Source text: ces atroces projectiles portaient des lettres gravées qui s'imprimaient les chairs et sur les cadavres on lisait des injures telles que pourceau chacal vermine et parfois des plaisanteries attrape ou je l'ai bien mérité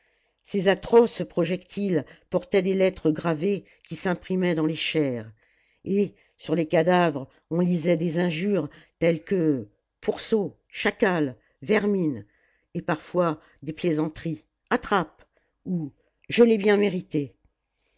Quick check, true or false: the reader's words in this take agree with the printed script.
false